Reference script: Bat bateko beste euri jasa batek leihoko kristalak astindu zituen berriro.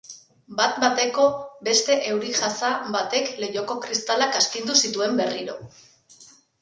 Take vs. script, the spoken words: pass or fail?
pass